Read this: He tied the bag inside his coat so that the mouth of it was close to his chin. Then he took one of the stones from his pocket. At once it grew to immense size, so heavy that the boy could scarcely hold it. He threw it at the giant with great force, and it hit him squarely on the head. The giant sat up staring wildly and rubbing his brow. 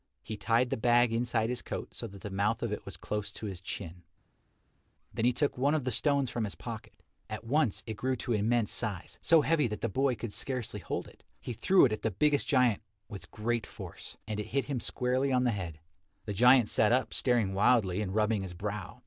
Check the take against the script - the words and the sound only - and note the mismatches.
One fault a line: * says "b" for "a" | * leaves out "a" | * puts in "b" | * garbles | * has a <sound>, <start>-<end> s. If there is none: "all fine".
* puts in "biggest"